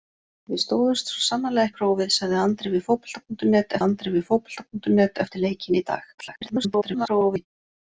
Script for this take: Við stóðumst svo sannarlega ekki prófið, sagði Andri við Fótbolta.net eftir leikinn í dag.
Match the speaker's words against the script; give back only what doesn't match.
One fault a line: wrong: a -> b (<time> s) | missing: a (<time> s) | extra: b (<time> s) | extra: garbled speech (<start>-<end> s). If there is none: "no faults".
missing: ekki (1.7 s)
extra: Andri við Fótbolta.net (3.8 s)
extra: garbled speech (6.2-7.5 s)